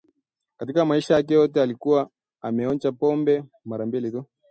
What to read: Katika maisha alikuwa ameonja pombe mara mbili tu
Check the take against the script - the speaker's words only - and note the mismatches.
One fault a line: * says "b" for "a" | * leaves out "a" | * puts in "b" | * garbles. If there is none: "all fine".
* puts in "yake yote"